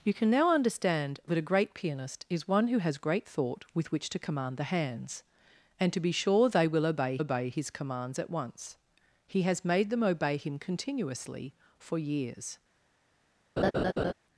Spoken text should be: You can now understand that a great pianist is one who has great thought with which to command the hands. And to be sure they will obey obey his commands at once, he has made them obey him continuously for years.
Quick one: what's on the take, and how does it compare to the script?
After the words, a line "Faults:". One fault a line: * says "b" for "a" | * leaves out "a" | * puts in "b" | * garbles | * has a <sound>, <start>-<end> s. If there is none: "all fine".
You can now understand that a great pianist is one who has great thought with which to command the hands. And to be sure they will obey obey his commands at once, he has made them obey him continuously for years.
Faults:
* has a laugh, 13.6-14.1 s